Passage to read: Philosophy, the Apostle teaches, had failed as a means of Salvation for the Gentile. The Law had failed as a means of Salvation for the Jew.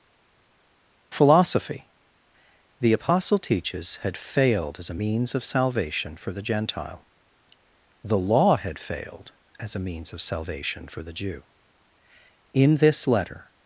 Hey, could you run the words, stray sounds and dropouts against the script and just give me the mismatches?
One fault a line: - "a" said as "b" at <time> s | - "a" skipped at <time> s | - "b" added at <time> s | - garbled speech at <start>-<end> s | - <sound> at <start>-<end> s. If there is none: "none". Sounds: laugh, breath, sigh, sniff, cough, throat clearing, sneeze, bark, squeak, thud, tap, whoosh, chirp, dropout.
- "In this Letter" added at 12.5 s